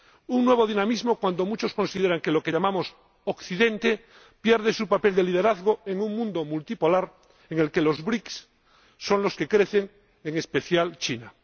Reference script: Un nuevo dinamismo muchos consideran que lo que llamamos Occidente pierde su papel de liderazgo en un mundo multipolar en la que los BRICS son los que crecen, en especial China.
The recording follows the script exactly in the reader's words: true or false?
false